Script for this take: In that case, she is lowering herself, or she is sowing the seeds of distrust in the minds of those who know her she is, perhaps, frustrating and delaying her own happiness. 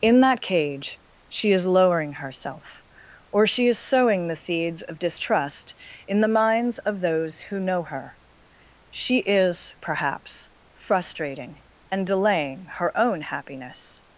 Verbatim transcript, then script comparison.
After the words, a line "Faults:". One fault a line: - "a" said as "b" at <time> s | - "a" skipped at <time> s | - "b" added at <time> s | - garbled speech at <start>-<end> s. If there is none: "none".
In that cage, she is lowering herself, or she is sowing the seeds of distrust in the minds of those who know her she is, perhaps, frustrating and delaying her own happiness.
Faults:
- "case" said as "cage" at 0.4 s